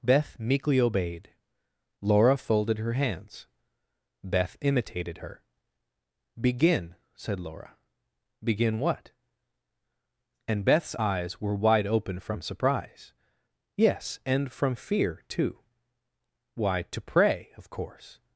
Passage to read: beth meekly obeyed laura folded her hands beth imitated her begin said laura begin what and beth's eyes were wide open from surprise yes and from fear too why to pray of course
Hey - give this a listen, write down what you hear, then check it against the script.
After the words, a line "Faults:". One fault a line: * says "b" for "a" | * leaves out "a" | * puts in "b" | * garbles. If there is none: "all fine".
beth meekly obeyed laura folded her hands beth imitated her begin said laura begin what and beth's eyes were wide open from surprise yes and from fear too why to pray of course
Faults:
all fine